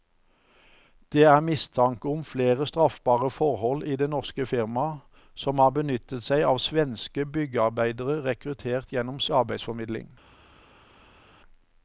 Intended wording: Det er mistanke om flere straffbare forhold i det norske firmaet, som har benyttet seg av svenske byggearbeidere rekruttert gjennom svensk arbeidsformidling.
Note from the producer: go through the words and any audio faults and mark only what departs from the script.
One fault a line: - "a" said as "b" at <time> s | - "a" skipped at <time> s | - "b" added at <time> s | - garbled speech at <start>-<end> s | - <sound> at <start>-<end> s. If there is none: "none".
- "svensk" skipped at 9.2 s